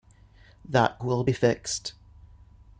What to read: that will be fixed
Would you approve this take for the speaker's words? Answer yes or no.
yes